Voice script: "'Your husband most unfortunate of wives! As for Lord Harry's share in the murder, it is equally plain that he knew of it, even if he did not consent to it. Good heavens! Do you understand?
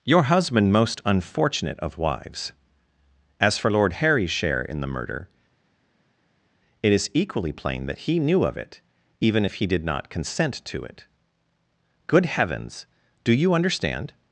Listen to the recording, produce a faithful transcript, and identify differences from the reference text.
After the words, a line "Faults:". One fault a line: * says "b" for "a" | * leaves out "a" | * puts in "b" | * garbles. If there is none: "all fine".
"'Your husband most unfortunate of wives! As for Lord Harry's share in the murder, it is equally plain that he knew of it, even if he did not consent to it. Good heavens! Do you understand?
Faults:
all fine